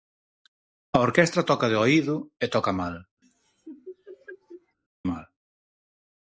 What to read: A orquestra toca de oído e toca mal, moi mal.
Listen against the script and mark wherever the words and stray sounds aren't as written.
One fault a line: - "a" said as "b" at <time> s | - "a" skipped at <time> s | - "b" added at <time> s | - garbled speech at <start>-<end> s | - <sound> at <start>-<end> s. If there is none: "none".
- "moi" skipped at 3.0 s
- laugh at 3.2-4.8 s